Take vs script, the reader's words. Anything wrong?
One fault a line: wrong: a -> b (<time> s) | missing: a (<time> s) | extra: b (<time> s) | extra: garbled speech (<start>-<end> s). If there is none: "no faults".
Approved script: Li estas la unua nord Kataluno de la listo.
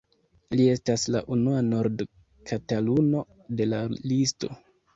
no faults